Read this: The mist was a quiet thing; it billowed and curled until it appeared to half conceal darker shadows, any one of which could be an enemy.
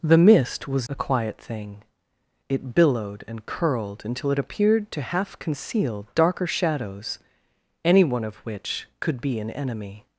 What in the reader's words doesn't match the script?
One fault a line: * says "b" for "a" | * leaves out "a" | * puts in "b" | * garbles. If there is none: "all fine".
all fine